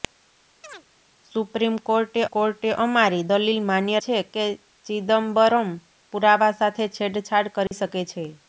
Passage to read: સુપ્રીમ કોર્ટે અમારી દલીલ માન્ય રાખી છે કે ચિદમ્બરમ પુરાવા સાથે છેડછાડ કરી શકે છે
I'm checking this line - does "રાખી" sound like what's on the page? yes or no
no